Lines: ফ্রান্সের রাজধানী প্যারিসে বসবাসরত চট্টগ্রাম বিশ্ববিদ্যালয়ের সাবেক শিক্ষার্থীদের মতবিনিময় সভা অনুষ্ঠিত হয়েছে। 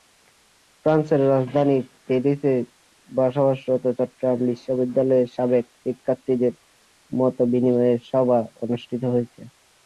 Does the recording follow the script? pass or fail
pass